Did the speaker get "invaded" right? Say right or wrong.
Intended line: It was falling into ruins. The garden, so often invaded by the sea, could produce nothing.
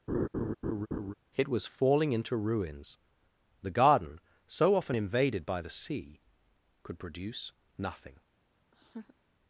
right